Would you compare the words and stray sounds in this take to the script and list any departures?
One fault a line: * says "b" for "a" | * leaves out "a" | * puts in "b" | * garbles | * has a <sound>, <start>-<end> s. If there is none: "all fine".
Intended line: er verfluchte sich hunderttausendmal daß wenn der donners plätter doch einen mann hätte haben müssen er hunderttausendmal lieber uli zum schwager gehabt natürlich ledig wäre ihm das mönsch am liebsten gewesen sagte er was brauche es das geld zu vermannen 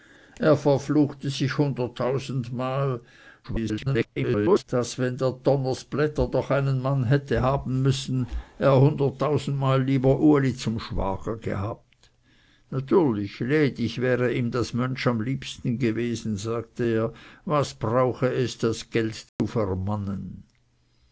* garbles
* has a dropout, 19.3-19.4 s